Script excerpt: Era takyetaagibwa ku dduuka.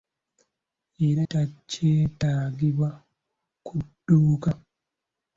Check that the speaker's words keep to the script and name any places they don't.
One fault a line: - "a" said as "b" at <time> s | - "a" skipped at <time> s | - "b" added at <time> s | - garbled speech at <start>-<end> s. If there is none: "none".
none